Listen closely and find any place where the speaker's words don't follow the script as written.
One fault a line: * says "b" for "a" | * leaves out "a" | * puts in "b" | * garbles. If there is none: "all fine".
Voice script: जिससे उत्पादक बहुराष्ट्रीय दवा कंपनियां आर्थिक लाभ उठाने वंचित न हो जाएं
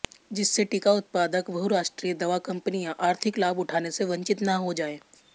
* puts in "टीका"
* puts in "से"